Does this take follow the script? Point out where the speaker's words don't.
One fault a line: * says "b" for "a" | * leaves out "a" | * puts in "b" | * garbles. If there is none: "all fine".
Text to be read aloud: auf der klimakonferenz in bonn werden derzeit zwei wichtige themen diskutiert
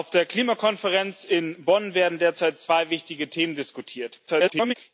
* garbles